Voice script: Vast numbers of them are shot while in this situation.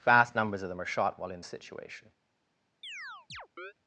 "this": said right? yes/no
no